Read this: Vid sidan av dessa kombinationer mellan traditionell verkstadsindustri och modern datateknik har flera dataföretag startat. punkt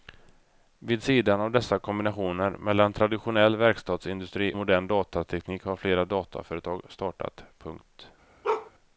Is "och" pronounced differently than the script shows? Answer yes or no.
yes